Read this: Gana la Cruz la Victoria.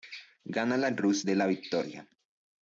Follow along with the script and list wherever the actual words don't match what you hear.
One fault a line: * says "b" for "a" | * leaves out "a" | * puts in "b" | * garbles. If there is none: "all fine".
* puts in "de"